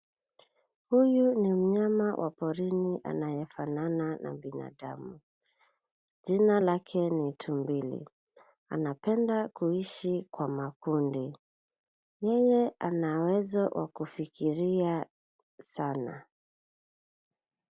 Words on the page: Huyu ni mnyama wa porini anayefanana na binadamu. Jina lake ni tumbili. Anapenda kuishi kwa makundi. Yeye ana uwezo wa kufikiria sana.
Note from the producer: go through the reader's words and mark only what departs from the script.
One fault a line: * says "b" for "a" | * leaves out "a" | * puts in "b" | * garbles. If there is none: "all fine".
all fine